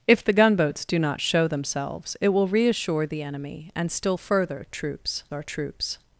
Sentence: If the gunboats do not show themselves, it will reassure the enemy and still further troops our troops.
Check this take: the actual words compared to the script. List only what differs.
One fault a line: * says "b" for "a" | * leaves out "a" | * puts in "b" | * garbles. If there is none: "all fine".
all fine